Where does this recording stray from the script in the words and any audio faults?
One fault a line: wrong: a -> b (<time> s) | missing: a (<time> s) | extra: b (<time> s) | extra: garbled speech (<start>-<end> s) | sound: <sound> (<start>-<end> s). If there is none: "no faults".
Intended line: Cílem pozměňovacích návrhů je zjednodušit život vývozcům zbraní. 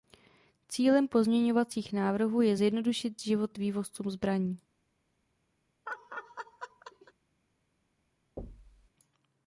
sound: laugh (5.9-7.1 s)
sound: thud (8.4-8.9 s)